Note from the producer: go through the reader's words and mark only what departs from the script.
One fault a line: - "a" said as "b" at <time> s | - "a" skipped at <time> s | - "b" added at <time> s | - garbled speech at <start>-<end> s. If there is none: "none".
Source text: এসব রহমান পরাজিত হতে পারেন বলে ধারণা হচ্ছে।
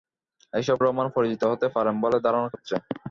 none